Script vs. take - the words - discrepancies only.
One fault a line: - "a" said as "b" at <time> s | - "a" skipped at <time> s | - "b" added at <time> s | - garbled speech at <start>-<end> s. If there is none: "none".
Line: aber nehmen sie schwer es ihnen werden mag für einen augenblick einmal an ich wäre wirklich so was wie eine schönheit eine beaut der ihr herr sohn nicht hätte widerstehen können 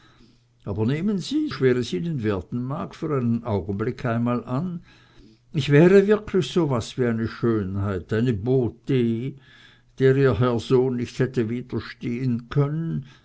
none